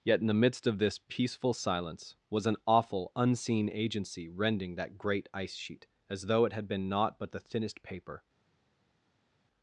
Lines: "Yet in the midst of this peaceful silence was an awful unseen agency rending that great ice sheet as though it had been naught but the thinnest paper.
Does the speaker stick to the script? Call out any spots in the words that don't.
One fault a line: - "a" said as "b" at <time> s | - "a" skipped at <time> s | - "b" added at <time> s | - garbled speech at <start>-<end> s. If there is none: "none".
none